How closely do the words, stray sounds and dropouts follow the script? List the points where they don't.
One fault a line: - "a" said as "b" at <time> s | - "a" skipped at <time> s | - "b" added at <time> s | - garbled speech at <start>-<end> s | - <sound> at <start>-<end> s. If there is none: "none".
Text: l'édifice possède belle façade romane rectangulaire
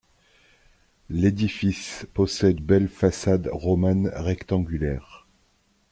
none